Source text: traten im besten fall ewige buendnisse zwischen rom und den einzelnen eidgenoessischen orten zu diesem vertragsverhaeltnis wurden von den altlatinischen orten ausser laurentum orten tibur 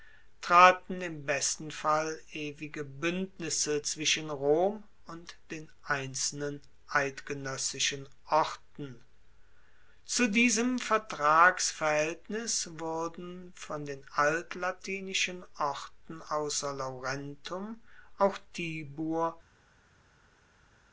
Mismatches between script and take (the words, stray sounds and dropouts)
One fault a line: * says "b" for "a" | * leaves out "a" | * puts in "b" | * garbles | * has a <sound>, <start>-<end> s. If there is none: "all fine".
* says "auch" for "orten"